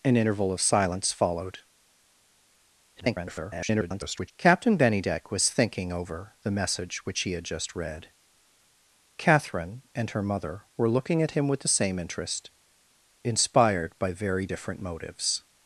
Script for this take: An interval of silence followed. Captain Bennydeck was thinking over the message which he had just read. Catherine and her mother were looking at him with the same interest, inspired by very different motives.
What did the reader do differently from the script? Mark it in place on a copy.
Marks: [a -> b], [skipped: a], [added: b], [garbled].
An interval of silence followed. [garbled] Captain Bennydeck was thinking over the message which he had just read. Catherine and her mother were looking at him with the same interest, inspired by very different motives.